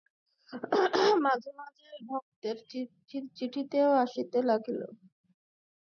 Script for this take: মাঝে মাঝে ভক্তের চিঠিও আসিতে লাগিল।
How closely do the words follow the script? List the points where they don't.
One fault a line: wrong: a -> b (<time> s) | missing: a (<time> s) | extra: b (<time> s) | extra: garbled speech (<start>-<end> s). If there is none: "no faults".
no faults